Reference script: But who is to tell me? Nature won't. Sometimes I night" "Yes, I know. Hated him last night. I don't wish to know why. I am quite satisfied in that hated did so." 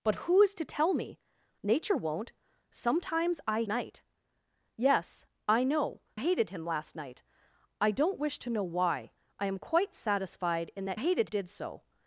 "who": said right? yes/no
yes